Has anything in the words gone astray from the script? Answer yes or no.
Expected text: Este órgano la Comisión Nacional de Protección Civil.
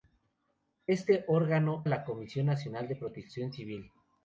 no